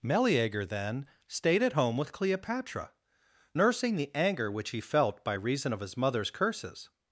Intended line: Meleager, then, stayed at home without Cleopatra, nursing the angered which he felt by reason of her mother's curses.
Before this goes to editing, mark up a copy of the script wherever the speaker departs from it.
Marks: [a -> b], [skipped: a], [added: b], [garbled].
Meleager, then, stayed at home [without -> with] Cleopatra, nursing the [angered -> anger] which he felt by reason of [her -> his] mother's curses.